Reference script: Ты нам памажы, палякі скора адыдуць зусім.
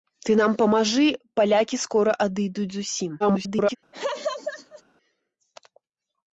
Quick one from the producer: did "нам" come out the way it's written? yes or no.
yes